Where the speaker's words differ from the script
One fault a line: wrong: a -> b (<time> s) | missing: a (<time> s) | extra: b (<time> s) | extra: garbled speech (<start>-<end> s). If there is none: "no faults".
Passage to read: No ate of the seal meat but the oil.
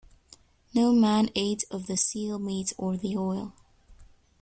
extra: man (0.9 s)
wrong: but -> or (2.8 s)